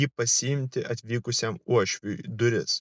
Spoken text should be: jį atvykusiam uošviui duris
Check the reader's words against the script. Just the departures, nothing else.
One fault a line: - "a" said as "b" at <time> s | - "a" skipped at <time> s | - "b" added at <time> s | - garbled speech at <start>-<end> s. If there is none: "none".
- "pasiimti" added at 0.2 s